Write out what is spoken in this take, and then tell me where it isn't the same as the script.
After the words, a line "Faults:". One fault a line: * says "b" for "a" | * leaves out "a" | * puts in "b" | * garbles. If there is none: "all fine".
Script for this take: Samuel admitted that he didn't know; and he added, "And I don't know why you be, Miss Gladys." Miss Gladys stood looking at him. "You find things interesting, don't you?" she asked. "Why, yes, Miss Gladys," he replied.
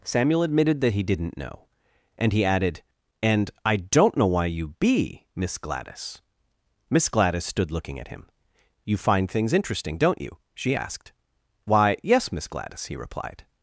Samuel admitted that he didn't know; and he added, "And I don't know why you be, Miss Gladys." Miss Gladys stood looking at him. "You find things interesting, don't you?" she asked. "Why, yes, Miss Gladys," he replied.
Faults:
all fine